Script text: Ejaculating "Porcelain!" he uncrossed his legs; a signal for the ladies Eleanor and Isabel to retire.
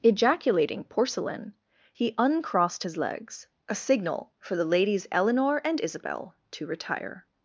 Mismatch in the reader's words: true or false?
false